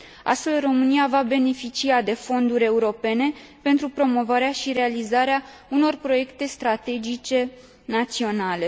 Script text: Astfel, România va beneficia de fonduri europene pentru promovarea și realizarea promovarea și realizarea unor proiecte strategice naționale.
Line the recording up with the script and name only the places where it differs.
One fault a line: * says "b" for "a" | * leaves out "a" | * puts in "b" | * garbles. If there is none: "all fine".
* leaves out "promovarea și realizarea"